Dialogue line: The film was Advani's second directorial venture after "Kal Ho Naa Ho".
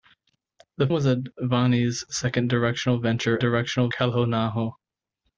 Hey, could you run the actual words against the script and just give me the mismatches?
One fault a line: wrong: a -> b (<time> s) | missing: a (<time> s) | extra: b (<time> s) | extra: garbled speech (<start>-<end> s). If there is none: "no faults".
missing: film (0.9 s)
wrong: after -> directorial (3.4 s)